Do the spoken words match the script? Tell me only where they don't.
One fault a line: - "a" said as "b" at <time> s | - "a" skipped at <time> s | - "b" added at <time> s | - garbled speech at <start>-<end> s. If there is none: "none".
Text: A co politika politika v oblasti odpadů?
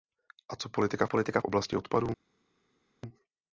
none